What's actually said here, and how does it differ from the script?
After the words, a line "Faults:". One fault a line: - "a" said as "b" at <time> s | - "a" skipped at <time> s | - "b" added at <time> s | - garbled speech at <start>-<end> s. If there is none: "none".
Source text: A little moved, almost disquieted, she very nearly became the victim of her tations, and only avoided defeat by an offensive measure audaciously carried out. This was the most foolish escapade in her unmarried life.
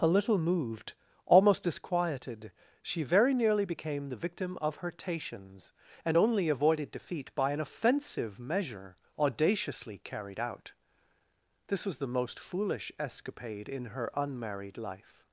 A little moved, almost disquieted, she very nearly became the victim of her tations, and only avoided defeat by an offensive measure audaciously carried out. This was the most foolish escapade in her unmarried life.
Faults:
none